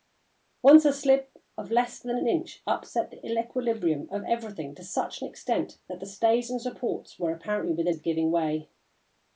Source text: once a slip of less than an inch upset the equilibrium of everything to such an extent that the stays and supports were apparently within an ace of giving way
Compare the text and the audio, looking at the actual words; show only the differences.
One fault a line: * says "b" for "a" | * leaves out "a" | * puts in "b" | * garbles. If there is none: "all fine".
* leaves out "an ace"